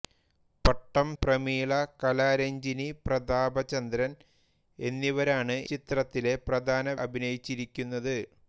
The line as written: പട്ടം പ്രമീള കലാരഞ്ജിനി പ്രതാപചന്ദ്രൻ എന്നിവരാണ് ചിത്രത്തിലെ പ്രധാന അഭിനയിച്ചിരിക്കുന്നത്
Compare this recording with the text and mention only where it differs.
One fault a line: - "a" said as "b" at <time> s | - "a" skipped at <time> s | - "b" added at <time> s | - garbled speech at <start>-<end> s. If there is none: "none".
none